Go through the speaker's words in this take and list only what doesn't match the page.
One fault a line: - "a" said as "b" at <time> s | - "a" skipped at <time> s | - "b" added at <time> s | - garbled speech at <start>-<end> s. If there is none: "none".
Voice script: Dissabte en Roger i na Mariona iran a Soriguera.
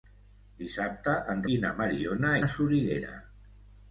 - "Roger" skipped at 1.4 s
- "iran" skipped at 2.3 s